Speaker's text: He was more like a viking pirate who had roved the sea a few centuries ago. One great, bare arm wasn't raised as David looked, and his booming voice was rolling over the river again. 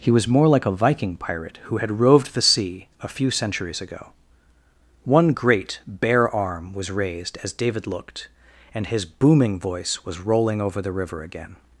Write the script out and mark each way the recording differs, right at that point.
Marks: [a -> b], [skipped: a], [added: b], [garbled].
He was more like a viking pirate who had roved the sea a few centuries ago. One great, bare arm [wasn't -> was] raised as David looked, and his booming voice was rolling over the river again.